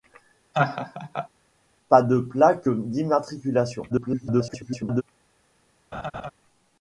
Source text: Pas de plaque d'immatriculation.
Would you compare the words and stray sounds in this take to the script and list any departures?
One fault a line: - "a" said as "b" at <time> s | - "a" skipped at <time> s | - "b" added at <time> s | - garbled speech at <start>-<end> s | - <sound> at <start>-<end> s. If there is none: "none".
- laugh at 0.5-1.3 s
- garbled speech at 3.9-5.0 s
- laugh at 5.9-6.3 s